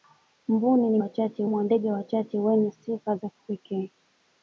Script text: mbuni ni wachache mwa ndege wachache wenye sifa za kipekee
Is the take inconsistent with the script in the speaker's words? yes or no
no